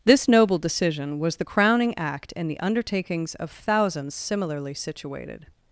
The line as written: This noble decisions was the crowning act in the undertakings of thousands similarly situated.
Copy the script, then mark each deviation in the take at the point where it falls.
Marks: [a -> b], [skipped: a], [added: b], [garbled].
This noble [decisions -> decision] was the crowning act in the undertakings of thousands similarly situated.